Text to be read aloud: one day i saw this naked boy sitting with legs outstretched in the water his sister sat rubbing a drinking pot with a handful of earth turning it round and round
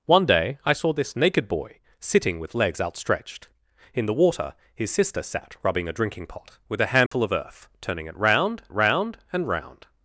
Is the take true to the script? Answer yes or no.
no